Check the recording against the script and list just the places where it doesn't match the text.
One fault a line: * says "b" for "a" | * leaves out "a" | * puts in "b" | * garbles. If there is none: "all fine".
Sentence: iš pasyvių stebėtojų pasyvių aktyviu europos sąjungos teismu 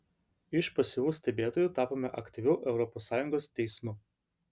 * says "tapome" for "pasyvių"